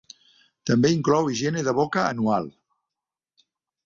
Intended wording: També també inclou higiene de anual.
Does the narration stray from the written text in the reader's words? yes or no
yes